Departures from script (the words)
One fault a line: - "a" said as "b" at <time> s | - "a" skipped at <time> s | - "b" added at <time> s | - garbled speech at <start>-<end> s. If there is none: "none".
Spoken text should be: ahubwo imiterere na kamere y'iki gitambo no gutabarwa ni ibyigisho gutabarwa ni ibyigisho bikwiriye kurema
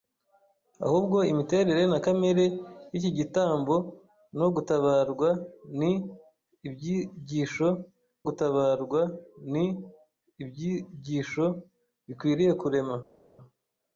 none